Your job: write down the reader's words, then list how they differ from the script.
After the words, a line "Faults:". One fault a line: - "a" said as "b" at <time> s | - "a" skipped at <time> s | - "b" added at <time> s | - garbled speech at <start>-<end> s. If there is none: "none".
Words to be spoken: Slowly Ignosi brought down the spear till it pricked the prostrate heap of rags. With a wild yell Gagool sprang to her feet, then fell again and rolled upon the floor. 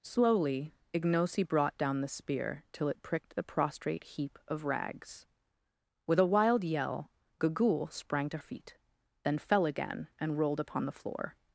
Slowly Ignosi brought down the spear till it pricked the prostrate heap of rags. With a wild yell Gagool sprang to feet, then fell again and rolled upon the floor.
Faults:
- "her" skipped at 8.4 s